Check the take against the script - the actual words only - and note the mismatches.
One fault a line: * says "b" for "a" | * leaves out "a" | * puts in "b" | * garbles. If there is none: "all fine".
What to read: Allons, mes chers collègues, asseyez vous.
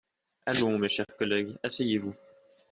all fine